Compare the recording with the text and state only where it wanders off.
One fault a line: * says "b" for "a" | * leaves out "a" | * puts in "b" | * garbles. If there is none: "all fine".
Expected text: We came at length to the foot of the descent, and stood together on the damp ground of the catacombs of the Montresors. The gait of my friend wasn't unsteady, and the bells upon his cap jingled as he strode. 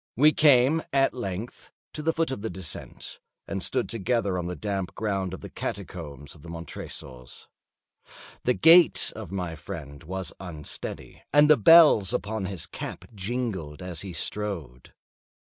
* says "was" for "wasn't"